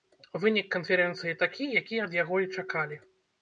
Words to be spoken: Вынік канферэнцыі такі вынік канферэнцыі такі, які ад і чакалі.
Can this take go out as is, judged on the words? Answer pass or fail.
fail